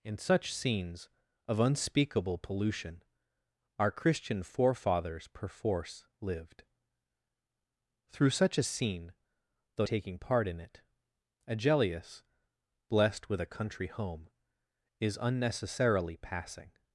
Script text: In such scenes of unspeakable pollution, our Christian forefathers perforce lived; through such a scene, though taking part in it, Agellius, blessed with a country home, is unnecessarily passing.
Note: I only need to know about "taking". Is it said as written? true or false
true